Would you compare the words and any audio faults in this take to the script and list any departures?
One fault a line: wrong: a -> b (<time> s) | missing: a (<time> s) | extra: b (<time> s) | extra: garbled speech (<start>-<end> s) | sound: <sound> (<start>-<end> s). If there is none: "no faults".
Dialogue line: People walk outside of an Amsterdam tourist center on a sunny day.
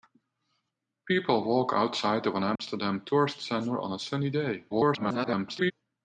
sound: dropout (2.6-2.6 s)
extra: garbled speech (4.7-5.7 s)